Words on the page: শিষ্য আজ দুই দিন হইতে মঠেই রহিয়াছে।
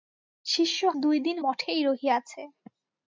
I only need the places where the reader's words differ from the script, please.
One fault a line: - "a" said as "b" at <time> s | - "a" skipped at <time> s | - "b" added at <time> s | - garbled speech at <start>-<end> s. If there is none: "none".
- "আজ" skipped at 0.8 s
- "হইতে" skipped at 1.4 s